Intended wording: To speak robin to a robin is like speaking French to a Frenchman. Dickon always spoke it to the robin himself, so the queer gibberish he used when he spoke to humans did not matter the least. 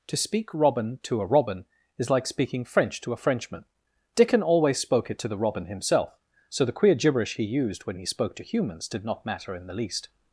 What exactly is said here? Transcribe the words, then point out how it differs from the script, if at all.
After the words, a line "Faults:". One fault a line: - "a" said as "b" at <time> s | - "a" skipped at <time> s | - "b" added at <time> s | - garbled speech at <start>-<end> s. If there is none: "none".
To speak robin to a robin is like speaking French to a Frenchman. Dickon always spoke it to the robin himself, so the queer gibberish he used when he spoke to humans did not matter in the least.
Faults:
- "in" added at 9.5 s